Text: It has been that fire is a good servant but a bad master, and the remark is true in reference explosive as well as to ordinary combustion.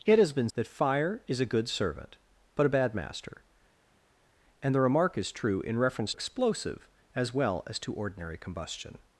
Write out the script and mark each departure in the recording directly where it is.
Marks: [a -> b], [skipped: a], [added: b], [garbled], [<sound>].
It has been that fire is a good servant but a bad master, and the remark is true in reference explosive as well as to ordinary combustion.